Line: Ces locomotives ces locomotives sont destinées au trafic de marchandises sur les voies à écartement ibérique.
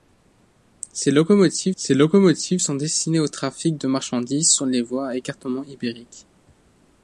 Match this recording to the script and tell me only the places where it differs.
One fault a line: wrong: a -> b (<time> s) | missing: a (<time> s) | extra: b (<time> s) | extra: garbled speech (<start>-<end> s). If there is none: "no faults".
no faults